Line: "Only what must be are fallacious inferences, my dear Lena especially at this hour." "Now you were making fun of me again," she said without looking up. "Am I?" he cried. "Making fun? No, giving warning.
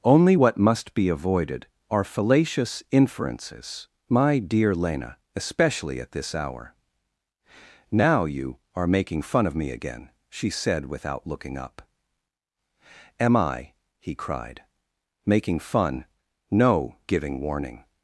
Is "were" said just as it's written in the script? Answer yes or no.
no